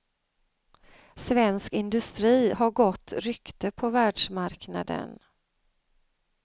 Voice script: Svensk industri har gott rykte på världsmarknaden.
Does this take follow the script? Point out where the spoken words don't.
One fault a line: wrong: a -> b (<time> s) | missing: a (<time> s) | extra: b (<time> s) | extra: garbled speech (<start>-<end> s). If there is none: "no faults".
no faults